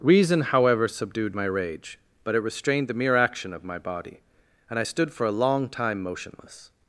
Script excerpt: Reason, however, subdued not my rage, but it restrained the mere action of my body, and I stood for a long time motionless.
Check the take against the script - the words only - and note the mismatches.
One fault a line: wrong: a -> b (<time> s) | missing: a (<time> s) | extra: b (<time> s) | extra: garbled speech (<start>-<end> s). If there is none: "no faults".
missing: not (1.4 s)